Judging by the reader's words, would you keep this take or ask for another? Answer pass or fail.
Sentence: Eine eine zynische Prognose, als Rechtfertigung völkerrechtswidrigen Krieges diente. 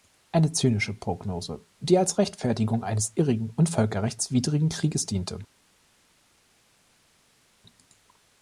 fail